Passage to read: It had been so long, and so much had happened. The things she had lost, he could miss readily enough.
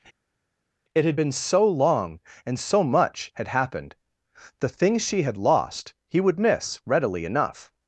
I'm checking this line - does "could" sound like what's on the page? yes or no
no